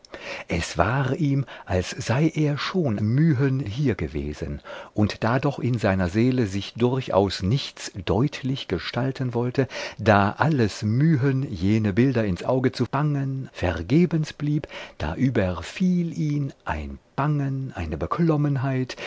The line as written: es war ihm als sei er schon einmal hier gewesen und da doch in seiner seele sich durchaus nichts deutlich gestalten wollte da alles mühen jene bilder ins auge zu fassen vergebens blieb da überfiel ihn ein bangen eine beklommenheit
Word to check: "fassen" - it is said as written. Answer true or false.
false